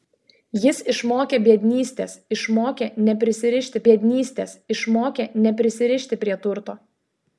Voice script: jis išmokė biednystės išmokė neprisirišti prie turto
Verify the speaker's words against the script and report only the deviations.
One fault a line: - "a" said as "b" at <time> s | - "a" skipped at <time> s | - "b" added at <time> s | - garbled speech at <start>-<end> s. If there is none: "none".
- "biednystės išmokė neprisirišti" added at 3.9 s